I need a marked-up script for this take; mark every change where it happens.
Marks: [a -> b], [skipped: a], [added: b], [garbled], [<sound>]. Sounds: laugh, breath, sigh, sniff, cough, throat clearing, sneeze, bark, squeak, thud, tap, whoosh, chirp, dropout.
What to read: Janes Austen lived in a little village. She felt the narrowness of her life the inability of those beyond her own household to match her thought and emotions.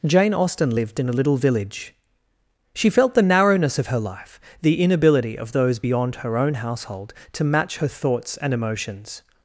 [Janes -> Jane] Austen lived in a little village. She felt the narrowness of her life the inability of those beyond her own household to match her [thought -> thoughts] and emotions.